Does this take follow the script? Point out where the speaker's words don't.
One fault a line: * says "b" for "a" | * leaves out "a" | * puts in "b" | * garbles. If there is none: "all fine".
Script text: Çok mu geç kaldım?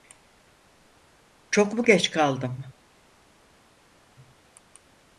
all fine